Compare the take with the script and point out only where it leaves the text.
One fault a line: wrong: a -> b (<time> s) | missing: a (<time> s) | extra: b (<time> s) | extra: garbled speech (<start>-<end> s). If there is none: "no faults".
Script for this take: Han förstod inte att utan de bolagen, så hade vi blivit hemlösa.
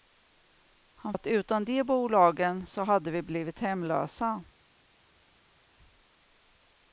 missing: förstod inte (1.1 s)